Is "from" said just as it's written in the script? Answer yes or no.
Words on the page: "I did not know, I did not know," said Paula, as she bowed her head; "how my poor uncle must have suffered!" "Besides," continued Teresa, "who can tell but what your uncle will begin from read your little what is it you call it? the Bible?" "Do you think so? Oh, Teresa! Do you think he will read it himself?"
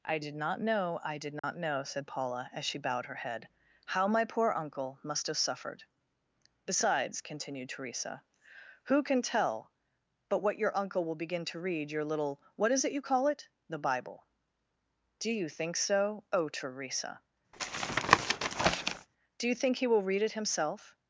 no